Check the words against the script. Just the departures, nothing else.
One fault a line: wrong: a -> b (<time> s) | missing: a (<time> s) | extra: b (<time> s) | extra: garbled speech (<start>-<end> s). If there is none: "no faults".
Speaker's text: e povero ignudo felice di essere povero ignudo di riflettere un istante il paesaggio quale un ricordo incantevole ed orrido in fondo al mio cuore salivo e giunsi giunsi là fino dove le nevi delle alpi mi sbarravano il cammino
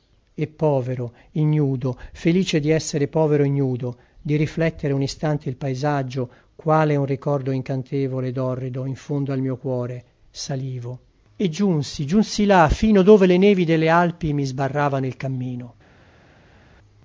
no faults